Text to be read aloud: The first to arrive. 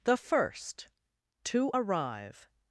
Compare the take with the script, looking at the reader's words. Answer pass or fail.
pass